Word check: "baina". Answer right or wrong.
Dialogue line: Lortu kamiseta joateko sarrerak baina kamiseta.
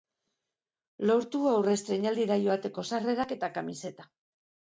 wrong